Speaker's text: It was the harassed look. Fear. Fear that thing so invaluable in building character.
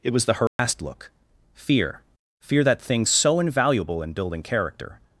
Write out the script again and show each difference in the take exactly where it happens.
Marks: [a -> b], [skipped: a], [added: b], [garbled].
It was the harassed look. Fear. Fear that thing so invaluable in building character.